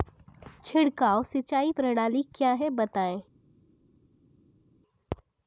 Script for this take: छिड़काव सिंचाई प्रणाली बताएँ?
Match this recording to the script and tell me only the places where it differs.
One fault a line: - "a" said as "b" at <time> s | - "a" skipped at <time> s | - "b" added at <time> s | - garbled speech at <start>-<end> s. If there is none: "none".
- "क्या है" added at 2.3 s